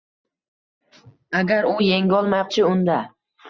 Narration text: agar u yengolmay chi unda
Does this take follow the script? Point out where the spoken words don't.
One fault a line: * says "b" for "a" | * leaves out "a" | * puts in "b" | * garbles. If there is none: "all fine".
all fine